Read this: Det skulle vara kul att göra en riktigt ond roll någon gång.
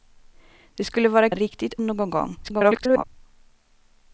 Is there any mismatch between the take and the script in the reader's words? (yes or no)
yes